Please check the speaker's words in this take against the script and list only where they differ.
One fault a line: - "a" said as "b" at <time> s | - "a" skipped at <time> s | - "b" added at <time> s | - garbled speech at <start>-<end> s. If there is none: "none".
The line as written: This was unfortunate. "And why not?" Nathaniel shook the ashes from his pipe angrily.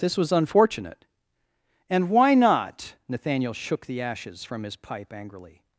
none